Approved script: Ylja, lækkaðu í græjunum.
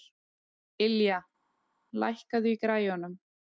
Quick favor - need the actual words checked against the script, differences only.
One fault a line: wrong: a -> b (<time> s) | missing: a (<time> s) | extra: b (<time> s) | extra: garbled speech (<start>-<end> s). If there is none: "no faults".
no faults